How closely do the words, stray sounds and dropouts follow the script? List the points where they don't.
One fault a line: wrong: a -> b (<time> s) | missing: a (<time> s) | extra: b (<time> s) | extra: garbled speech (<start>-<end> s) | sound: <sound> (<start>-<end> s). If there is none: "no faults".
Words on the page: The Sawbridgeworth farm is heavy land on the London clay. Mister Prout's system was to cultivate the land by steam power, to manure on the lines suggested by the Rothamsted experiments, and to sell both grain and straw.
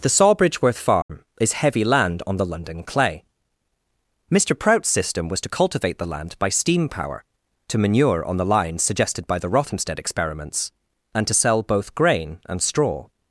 sound: dropout (1.0-1.1 s)